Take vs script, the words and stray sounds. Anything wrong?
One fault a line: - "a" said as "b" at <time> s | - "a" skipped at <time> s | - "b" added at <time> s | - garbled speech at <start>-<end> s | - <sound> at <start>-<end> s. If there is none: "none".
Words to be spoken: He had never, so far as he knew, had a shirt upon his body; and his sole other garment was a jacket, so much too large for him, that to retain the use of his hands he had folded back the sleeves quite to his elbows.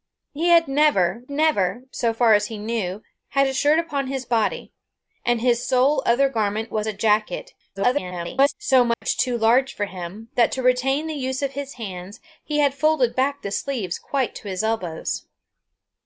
- "never" added at 1.3 s
- garbled speech at 7.8-8.5 s
- dropout at 8.9-9.0 s